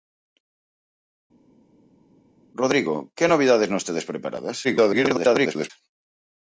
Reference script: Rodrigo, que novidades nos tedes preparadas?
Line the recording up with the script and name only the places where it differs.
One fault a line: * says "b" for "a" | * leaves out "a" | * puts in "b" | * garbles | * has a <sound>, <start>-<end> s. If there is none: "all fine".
* garbles